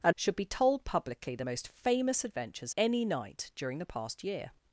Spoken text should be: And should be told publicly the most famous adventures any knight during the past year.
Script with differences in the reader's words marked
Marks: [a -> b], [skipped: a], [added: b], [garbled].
And should be told publicly the most famous adventures any knight during the past year.